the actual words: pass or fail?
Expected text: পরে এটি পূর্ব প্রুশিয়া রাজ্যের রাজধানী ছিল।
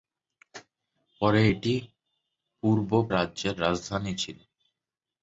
fail